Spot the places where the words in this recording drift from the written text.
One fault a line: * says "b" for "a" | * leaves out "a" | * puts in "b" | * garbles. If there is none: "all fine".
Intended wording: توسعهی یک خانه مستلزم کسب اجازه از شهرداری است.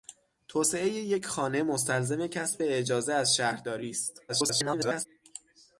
* garbles